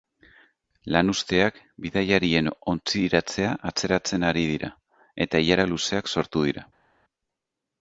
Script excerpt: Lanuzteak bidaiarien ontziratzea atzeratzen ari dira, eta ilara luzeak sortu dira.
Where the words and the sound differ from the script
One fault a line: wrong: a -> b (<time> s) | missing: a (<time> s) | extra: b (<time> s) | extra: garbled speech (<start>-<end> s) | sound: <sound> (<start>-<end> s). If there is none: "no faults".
no faults